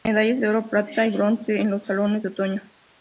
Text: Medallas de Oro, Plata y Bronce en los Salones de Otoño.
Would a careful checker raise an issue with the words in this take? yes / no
no